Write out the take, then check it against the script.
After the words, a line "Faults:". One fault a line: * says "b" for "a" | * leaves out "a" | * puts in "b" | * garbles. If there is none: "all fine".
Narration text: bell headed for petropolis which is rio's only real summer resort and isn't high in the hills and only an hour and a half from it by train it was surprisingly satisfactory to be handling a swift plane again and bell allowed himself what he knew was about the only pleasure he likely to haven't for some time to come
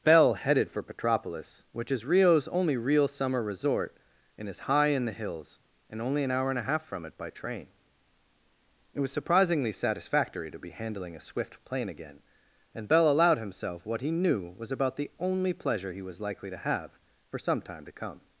bell headed for petropolis which is rio's only real summer resort and is high in the hills and only an hour and a half from it by train it was surprisingly satisfactory to be handling a swift plane again and bell allowed himself what he knew was about the only pleasure he was likely to have for some time to come
Faults:
* says "is" for "isn't"
* puts in "was"
* says "have" for "haven't"